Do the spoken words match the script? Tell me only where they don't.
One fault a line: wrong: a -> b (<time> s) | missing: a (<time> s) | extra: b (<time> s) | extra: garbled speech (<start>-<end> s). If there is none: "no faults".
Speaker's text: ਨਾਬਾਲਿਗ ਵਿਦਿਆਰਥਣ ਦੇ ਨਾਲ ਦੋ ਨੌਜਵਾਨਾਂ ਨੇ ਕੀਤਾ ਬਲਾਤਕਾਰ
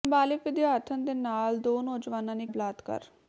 missing: ਕੀਤਾ (2.5 s)